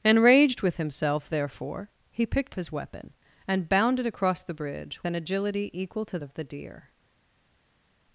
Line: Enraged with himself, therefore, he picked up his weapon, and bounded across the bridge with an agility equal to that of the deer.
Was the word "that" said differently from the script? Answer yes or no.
yes